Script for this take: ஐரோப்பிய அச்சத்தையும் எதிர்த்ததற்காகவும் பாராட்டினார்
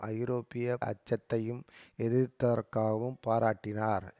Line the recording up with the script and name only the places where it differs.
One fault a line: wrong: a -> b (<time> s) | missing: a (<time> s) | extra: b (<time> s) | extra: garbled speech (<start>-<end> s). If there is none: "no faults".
no faults